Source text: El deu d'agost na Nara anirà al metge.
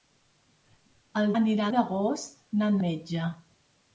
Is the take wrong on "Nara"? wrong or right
wrong